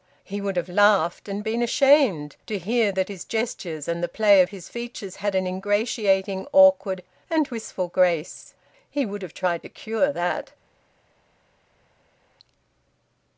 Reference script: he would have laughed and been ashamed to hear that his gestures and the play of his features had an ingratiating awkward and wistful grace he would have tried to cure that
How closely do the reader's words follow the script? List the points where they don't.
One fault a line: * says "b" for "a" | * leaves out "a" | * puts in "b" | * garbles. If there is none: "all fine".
all fine